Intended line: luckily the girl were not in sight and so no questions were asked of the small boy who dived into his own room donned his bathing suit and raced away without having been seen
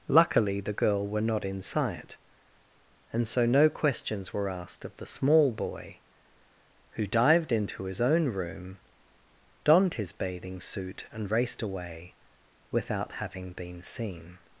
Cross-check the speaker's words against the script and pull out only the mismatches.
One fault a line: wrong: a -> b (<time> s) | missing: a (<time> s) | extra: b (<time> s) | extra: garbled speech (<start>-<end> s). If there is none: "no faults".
no faults